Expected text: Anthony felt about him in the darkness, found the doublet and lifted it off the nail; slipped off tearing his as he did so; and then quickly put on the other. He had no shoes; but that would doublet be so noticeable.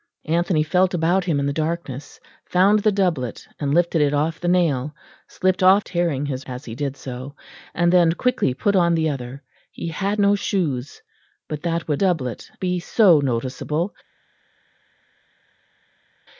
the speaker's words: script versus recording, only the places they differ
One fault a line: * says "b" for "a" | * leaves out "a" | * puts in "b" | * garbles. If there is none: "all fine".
all fine